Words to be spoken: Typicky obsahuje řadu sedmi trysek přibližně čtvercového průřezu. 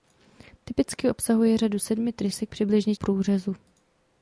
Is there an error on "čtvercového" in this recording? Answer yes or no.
yes